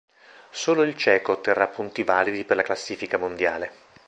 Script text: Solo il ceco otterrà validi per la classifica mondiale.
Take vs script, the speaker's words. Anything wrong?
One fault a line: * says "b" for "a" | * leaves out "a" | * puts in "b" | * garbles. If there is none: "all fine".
* puts in "punti"